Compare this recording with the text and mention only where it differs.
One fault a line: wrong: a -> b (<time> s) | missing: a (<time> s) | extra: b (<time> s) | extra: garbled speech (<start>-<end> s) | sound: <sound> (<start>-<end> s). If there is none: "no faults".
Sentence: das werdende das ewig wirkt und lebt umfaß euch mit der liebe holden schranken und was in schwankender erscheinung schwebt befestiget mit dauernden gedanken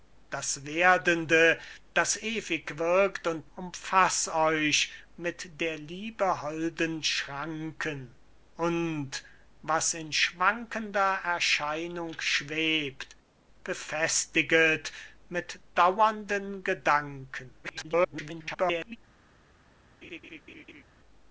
missing: lebt (3.5 s)
extra: garbled speech (17.6-19.0 s)
sound: laugh (20.0-20.8 s)